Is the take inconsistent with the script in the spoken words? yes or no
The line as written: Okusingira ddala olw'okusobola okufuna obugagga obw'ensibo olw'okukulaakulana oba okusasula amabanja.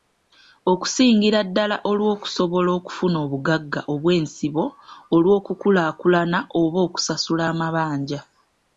no